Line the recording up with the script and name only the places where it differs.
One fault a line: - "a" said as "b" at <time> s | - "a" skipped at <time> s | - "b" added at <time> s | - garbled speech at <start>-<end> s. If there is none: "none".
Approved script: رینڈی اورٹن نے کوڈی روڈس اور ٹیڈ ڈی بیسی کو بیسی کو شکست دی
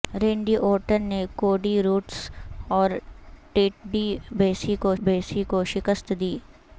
none